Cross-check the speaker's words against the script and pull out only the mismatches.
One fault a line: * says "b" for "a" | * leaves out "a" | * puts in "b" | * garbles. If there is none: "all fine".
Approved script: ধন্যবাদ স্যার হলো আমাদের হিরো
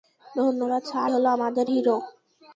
all fine